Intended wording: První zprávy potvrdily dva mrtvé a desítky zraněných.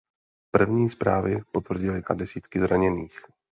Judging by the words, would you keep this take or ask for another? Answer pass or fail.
fail